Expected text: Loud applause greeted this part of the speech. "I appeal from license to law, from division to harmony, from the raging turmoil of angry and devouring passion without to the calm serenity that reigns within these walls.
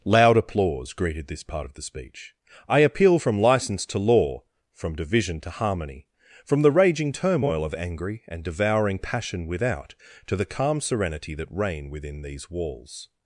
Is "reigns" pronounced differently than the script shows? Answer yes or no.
yes